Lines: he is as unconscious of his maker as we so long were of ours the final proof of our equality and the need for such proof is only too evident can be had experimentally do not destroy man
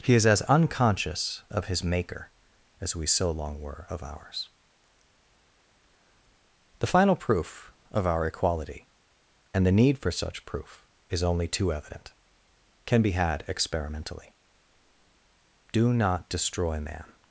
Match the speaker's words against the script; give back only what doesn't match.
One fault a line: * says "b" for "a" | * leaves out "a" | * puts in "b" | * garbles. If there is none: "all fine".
all fine